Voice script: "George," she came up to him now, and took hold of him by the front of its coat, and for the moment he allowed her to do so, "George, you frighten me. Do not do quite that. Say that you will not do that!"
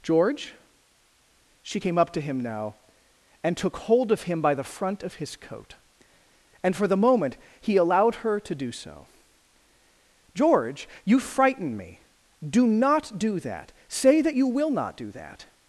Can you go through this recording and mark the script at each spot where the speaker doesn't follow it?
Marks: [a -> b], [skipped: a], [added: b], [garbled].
"George," she came up to him now, and took hold of him by the front of [its -> his] coat, and for the moment he allowed her to do so, "George, you frighten me. Do not do [skipped: quite] that. Say that you will not do that!"